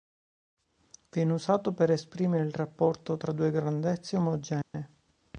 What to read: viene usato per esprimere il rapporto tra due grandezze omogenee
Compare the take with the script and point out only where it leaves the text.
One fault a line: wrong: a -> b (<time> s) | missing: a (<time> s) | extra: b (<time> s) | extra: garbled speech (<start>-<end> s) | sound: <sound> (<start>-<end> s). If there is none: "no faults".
sound: dropout (4.6-4.7 s)